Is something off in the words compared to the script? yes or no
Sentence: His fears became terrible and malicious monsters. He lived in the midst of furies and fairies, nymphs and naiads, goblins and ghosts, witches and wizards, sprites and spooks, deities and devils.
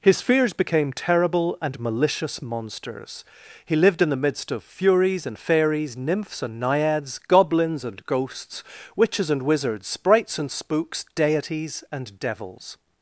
no